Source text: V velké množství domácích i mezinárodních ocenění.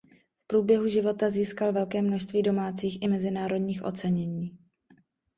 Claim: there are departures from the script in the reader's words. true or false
true